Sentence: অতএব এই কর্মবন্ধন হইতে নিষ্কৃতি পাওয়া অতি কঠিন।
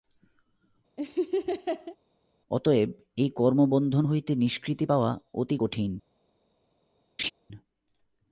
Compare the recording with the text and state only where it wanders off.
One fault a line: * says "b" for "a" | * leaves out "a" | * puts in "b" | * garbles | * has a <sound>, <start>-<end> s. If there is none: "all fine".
* has a laugh, 1.0-2.0 s
* has a laugh, 7.2-7.3 s